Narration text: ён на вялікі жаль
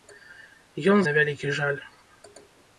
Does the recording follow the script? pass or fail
pass